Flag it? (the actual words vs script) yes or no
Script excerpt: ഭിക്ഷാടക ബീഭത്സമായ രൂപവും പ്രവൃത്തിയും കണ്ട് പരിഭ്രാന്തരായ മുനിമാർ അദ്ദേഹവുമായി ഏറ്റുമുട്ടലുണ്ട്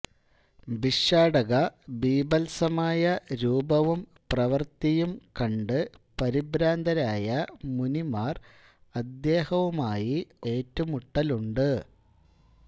no